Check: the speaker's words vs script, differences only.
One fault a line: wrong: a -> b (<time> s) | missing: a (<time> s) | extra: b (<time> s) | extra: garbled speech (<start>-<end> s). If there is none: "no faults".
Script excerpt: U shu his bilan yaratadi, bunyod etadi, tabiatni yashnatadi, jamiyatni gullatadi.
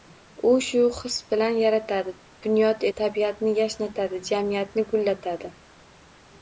missing: etadi (2.9 s)